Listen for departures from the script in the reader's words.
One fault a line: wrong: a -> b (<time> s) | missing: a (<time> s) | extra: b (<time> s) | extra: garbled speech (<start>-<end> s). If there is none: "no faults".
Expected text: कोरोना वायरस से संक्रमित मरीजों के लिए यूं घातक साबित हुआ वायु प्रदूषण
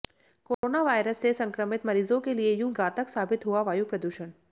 no faults